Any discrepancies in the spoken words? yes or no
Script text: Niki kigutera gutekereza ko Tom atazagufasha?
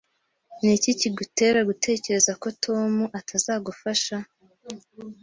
no